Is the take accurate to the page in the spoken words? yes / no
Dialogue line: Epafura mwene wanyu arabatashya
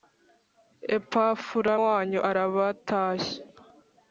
no